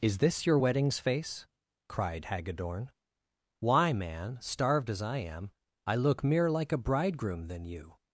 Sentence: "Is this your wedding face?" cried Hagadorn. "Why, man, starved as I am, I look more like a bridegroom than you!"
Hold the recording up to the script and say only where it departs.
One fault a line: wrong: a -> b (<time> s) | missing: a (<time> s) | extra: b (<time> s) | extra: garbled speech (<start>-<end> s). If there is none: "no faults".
wrong: wedding -> weddings (0.6 s)
wrong: more -> mere (6.2 s)